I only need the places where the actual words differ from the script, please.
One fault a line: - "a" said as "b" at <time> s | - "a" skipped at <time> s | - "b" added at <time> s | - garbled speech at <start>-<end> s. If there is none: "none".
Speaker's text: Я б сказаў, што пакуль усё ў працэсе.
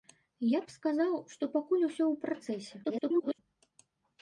- garbled speech at 2.8-3.4 s